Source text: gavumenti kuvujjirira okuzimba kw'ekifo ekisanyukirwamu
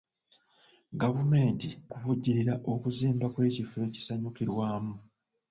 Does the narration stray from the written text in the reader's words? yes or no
no